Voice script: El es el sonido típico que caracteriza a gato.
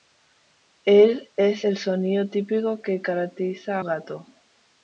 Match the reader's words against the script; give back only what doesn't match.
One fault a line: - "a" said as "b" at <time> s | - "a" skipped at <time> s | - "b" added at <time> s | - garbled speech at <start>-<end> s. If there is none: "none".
none